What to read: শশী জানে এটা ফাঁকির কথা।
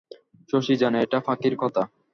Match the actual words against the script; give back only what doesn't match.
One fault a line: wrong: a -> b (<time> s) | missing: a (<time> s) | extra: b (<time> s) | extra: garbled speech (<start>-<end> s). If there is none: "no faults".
no faults